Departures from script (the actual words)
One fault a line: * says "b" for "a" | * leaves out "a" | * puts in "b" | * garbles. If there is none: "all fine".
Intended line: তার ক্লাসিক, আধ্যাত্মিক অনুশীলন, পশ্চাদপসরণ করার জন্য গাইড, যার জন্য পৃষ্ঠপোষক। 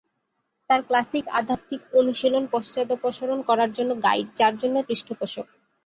all fine